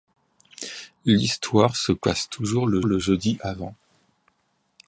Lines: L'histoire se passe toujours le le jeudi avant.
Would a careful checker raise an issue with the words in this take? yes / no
no